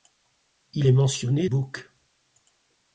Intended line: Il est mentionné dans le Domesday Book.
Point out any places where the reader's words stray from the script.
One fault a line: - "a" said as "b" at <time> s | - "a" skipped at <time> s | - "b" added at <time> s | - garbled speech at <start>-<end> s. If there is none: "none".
- "dans le Domesday" skipped at 1.5 s